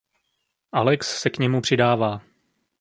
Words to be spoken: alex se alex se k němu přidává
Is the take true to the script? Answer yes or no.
no